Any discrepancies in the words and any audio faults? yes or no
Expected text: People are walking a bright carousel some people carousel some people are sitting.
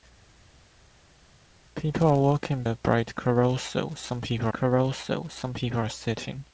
no